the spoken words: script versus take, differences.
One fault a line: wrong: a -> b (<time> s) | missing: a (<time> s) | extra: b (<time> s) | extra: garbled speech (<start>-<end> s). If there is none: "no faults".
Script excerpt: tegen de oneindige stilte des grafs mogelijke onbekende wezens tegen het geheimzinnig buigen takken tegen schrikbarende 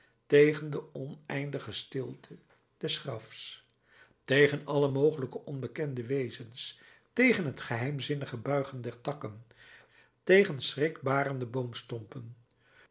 extra: tegen alle (4.2 s)
extra: der (8.8 s)